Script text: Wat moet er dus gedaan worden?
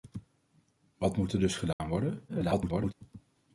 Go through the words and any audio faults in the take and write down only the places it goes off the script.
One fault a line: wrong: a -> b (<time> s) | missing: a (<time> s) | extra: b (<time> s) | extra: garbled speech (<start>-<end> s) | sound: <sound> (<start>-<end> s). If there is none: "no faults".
sound: dropout (1.7-1.8 s)
extra: garbled speech (2.3-2.9 s)